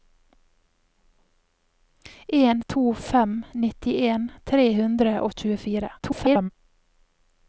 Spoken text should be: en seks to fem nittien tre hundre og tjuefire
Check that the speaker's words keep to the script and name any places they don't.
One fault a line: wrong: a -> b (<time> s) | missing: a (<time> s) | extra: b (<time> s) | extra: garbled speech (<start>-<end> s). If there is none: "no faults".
missing: seks (2.6 s)
extra: garbled speech (6.0-6.5 s)